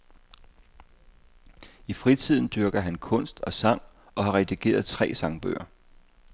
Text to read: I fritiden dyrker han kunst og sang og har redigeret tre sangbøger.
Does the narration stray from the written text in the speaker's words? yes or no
no